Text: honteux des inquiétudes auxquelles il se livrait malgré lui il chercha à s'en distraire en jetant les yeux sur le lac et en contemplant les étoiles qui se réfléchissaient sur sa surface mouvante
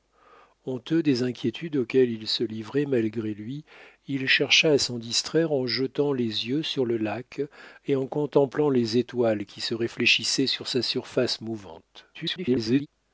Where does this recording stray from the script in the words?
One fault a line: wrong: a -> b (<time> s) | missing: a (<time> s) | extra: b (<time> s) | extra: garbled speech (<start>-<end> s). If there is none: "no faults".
extra: garbled speech (12.1-12.9 s)